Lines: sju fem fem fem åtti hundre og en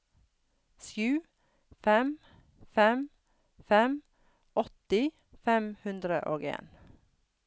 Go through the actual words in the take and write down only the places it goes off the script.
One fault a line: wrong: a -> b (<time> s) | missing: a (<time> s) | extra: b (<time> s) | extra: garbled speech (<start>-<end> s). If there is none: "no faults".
extra: fem (5.5 s)